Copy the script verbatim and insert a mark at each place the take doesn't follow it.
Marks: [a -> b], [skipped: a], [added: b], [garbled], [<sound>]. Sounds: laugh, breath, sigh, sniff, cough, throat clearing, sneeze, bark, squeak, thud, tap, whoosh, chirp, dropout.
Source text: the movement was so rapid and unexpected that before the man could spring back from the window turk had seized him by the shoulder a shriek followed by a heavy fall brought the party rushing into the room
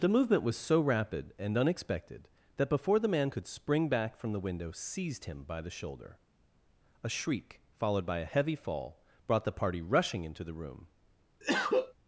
the movement was so rapid and unexpected that before the man could spring back from the window [skipped: turk had] seized him by the shoulder a shriek followed by a heavy fall brought the party rushing into the room [cough]